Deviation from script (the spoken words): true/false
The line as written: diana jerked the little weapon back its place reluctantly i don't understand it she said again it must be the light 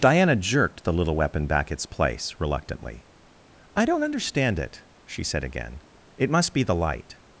false